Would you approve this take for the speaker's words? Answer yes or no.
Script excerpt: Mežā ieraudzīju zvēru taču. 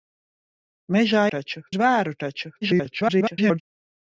no